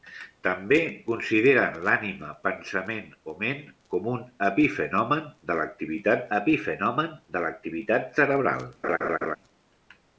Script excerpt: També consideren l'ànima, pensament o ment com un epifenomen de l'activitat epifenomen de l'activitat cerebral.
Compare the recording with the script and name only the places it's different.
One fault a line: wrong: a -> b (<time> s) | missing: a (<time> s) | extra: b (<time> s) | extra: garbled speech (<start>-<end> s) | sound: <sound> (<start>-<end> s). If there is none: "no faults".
sound: laugh (8.8-9.4 s)